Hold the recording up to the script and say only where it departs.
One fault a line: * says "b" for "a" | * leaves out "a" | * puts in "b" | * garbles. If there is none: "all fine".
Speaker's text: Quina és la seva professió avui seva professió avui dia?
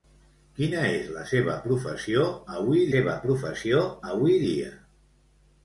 all fine